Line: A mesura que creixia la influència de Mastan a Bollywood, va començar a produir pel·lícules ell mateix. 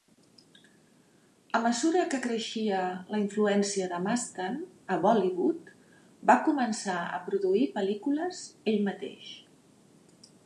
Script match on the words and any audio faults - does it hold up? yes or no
yes